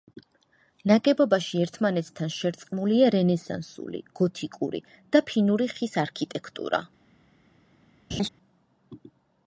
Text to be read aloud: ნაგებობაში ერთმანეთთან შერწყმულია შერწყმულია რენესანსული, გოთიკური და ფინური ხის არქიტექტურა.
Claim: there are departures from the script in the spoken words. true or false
true